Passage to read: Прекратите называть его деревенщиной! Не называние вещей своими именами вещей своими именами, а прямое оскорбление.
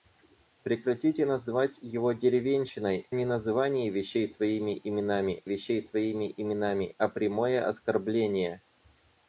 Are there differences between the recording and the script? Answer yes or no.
no